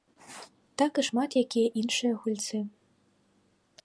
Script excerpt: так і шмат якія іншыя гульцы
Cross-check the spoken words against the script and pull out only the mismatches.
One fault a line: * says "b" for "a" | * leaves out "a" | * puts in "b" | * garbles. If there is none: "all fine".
all fine